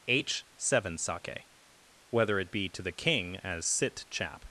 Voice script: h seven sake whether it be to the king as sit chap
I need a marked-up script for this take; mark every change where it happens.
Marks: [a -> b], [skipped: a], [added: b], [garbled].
h seven sake whether it be to the king as sit chap